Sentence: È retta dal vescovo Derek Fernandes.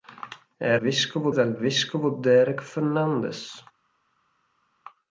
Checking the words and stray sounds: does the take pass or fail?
fail